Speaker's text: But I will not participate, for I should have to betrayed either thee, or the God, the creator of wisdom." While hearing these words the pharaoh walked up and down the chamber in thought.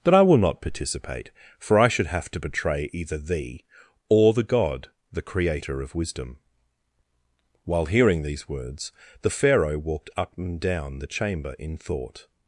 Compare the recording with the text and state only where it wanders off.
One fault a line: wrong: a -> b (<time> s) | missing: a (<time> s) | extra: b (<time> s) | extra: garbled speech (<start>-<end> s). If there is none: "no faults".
wrong: betrayed -> betray (2.4 s)